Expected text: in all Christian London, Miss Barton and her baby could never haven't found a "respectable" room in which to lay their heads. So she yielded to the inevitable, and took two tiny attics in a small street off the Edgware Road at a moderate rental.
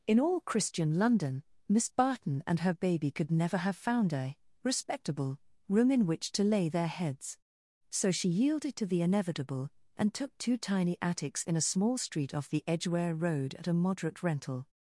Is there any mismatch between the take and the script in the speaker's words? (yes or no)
yes